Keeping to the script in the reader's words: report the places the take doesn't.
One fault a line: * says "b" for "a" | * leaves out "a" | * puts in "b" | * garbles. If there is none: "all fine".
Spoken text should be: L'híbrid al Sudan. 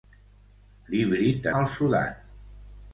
all fine